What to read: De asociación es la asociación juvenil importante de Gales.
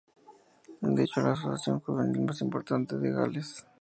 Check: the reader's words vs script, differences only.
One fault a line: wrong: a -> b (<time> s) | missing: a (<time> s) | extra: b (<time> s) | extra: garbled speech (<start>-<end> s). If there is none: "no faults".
wrong: asociación -> hecho (1.0 s)
extra: más (2.2 s)